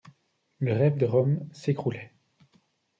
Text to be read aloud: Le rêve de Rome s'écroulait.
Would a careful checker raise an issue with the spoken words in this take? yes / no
no